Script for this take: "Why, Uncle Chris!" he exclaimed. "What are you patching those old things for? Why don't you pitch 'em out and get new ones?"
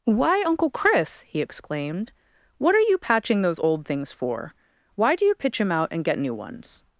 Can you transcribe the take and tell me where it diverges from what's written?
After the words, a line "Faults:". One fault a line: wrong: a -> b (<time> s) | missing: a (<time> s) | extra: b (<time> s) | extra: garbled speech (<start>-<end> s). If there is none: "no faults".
"Why, Uncle Chris!" he exclaimed. "What are you patching those old things for? Why do you pitch 'em out and get new ones?"
Faults:
wrong: don't -> do (5.2 s)